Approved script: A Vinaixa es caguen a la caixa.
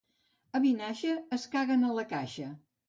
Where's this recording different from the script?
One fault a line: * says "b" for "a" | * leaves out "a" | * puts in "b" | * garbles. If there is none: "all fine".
all fine